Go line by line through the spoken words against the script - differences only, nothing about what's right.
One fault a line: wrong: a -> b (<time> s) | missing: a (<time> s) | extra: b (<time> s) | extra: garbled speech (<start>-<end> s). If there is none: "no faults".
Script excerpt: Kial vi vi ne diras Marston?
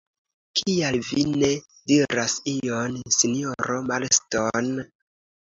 missing: vi (1.2 s)
extra: ion sinjoro (2.5 s)